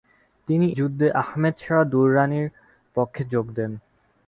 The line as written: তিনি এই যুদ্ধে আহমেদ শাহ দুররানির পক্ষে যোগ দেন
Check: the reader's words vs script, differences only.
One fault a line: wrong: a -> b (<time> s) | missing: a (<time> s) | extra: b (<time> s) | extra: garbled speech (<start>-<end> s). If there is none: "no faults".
missing: এই (0.7 s)